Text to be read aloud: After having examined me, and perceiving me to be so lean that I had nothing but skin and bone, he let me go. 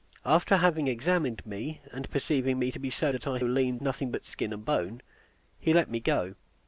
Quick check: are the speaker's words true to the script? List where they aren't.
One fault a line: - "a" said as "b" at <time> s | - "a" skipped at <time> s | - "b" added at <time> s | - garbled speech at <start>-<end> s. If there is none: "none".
- "lean" skipped at 3.1 s
- "had" said as "lean" at 3.4 s